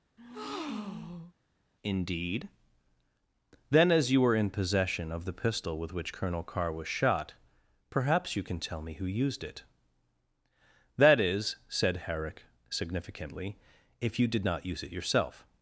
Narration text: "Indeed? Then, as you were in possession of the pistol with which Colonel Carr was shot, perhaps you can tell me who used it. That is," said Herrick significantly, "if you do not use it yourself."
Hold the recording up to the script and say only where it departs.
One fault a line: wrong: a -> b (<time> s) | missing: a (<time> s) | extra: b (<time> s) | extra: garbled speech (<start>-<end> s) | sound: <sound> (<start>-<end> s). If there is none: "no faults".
sound: breath (0.2-1.3 s)
wrong: do -> did (14.3 s)